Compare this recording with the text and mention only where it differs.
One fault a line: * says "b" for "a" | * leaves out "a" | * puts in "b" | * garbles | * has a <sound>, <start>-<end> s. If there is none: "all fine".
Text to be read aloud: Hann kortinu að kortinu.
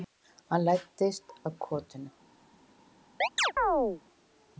* says "læddist" for "kortinu"
* has a chirp, 3.2-4.0 s